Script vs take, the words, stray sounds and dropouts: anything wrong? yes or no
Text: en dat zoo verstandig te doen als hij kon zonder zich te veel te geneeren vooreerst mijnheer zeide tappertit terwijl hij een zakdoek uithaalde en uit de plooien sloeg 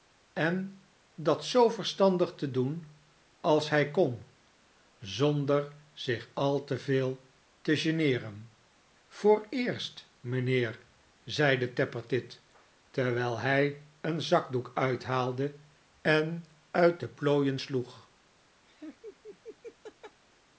yes